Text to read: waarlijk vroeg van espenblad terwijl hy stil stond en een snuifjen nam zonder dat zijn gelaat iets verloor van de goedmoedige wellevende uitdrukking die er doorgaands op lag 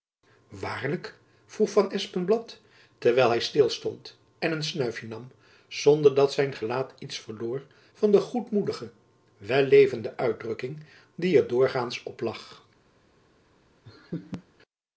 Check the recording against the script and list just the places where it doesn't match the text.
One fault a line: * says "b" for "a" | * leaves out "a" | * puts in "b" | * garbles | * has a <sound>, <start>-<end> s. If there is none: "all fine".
* has a laugh, 13.8-14.4 s